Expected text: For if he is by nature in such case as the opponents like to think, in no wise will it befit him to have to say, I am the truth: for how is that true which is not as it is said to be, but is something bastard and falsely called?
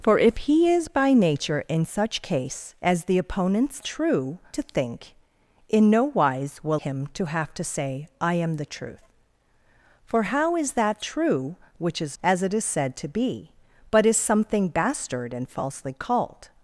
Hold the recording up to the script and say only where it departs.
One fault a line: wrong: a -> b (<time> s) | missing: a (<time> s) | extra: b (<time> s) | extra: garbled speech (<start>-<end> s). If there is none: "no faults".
wrong: like -> true (3.8 s)
missing: it befit (6.8 s)
missing: not (12.2 s)